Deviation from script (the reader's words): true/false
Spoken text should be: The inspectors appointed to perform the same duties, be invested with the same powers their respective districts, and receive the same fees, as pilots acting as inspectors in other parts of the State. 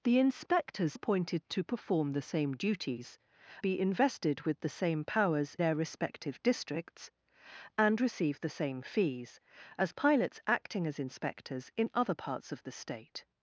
false